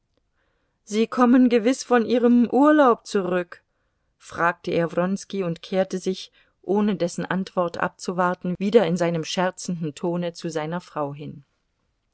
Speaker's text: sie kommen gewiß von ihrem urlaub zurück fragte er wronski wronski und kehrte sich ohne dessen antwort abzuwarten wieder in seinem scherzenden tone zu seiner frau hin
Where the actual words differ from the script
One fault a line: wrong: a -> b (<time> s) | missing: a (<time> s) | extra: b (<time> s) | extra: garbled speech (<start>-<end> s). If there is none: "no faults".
missing: wronski (5.4 s)